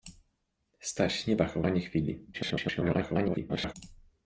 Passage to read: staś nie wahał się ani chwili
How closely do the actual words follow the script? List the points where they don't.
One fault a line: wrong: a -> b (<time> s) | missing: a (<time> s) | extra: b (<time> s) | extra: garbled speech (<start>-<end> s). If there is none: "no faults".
missing: się (1.6 s)
extra: garbled speech (2.3-3.7 s)